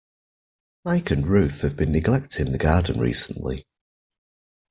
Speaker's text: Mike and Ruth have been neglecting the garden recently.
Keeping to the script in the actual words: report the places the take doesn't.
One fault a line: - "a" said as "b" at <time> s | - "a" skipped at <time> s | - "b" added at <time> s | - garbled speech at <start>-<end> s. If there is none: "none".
none